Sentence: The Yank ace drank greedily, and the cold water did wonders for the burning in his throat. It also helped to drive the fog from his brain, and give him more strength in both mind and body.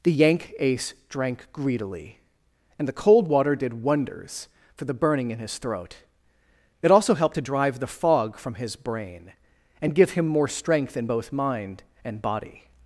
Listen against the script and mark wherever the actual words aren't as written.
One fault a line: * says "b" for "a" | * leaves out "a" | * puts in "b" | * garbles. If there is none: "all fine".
all fine